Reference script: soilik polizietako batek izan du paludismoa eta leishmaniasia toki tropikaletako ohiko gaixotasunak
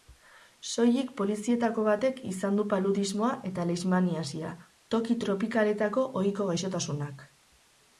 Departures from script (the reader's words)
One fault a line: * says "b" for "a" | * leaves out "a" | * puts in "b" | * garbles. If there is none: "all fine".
all fine